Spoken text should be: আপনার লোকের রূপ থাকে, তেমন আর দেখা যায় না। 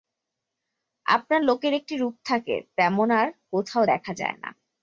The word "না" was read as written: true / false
true